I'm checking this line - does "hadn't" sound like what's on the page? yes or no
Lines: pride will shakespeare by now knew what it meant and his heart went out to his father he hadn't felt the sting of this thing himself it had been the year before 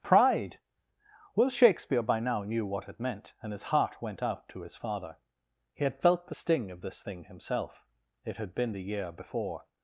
no